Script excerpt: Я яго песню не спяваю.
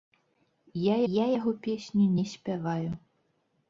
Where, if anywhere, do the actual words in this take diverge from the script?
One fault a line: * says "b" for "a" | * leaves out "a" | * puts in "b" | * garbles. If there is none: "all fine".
* puts in "я"